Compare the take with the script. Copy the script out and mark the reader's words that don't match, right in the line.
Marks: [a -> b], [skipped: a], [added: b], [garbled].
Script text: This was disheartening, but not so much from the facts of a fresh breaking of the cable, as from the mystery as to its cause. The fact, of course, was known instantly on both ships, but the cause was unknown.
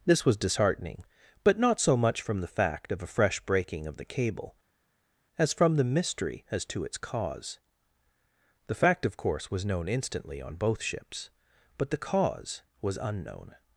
This was disheartening, but not so much from the [facts -> fact] of a fresh breaking of the cable, as from the mystery as to its cause. The fact, of course, was known instantly on both ships, but the cause was unknown.